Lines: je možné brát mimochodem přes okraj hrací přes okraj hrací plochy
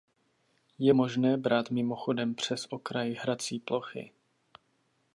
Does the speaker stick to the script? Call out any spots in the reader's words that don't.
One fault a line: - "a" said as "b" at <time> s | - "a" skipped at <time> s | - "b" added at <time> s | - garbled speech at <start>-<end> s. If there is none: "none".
- "přes okraj hrací" skipped at 3.6 s